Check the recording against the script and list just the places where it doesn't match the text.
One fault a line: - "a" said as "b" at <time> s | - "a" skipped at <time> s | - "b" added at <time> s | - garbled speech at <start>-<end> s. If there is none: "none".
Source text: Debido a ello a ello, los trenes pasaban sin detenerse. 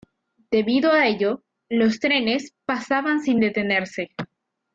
- "a ello" skipped at 1.4 s